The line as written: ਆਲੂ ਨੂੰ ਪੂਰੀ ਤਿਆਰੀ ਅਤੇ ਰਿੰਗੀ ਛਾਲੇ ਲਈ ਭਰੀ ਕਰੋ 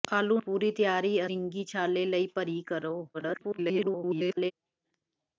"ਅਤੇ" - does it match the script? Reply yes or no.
no